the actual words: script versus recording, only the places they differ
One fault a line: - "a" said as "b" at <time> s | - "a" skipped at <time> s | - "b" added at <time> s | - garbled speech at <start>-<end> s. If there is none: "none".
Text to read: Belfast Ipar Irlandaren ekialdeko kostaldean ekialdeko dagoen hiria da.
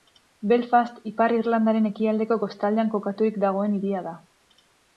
- "ekialdeko" said as "kokaturik" at 3.0 s